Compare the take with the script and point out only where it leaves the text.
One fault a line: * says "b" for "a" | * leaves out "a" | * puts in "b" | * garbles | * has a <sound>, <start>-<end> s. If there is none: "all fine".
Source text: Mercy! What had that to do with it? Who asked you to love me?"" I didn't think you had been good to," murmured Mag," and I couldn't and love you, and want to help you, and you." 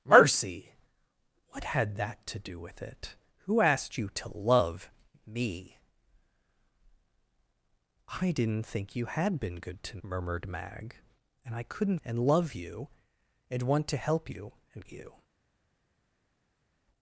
all fine